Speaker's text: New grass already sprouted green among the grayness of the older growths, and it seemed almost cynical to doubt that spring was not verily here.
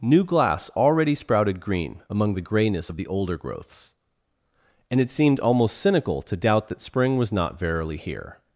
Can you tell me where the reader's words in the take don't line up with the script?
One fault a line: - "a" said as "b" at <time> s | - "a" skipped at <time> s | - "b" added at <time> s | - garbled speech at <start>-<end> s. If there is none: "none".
- "grass" said as "glass" at 0.2 s